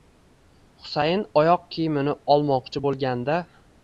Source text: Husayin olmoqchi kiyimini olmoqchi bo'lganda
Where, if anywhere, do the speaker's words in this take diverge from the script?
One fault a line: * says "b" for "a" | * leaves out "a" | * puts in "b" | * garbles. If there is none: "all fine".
* says "oyoq" for "olmoqchi"